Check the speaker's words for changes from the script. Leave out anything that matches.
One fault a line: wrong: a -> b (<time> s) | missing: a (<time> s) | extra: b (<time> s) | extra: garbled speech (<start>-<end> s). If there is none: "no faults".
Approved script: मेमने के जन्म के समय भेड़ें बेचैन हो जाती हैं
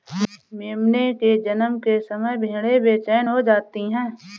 no faults